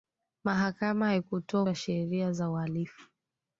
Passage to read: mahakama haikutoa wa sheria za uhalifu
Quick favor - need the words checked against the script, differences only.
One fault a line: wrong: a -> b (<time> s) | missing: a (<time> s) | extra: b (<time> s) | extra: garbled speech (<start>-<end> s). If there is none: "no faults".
no faults